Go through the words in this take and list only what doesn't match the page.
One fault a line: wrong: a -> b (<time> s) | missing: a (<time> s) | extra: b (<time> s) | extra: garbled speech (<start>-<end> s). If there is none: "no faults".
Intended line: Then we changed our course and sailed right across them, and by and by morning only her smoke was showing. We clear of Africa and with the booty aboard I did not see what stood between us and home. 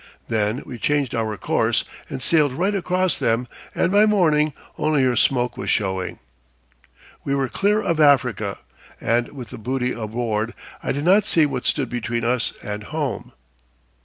missing: and by (4.1 s)
extra: were (7.3 s)